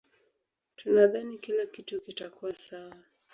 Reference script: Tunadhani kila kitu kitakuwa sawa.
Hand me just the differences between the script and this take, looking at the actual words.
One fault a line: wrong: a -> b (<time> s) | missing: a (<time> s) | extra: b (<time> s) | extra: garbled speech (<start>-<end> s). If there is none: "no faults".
no faults